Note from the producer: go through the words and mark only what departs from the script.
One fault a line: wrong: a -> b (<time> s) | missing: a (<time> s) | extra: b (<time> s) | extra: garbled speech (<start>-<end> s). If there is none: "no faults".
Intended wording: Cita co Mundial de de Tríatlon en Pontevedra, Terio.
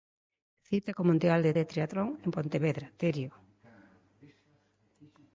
no faults